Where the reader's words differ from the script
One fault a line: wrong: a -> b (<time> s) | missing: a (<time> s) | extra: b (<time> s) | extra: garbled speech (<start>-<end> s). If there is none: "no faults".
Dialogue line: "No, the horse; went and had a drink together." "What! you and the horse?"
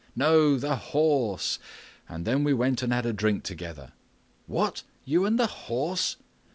extra: and then we (2.1 s)